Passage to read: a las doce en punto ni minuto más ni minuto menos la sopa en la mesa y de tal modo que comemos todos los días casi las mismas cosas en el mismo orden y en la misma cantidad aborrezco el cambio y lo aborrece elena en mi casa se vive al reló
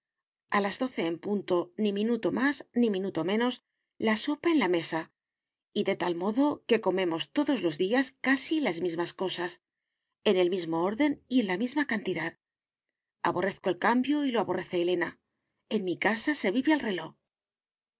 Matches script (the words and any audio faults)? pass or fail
pass